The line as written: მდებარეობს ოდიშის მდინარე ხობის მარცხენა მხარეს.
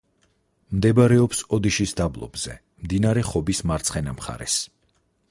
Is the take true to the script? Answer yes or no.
no